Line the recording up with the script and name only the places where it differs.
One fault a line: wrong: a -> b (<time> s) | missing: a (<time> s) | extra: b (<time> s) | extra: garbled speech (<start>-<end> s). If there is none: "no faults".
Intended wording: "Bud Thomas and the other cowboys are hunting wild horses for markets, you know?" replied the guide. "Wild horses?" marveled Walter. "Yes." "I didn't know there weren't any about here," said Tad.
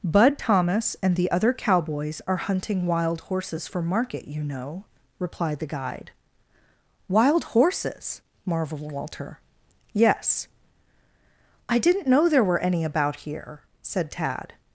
wrong: markets -> market (3.8 s)
wrong: weren't -> were (12.4 s)